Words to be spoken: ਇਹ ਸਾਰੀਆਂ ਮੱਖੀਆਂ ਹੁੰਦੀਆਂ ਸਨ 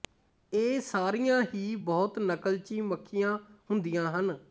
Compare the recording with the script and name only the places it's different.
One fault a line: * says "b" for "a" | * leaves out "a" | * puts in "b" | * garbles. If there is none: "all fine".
* puts in "ਹੀ ਬਹੁਤ ਨਕਲਚੀ"
* says "ਹਨ" for "ਸਨ"